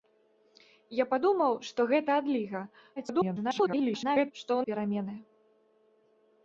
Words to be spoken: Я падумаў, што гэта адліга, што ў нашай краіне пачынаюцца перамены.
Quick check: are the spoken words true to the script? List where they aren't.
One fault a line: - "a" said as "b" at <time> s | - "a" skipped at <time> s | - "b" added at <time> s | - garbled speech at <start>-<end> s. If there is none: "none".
- garbled speech at 3.0-4.3 s
- "нашай краіне пачынаюцца" skipped at 4.6 s